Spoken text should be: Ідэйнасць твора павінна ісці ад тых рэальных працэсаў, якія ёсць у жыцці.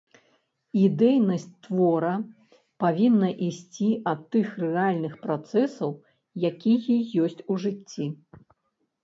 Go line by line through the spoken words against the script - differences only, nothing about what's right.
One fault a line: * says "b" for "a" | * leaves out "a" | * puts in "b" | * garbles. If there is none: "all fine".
all fine